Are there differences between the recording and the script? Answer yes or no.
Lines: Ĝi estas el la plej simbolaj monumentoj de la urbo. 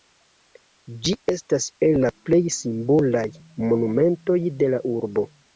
no